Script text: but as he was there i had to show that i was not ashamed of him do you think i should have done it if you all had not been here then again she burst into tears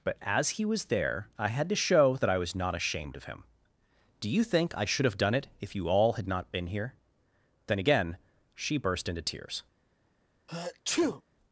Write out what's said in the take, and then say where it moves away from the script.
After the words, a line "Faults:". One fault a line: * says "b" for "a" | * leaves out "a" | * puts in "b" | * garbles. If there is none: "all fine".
but as he was there i had to show that i was not ashamed of him do you think i should have done it if you all had not been here then again she burst into tears
Faults:
all fine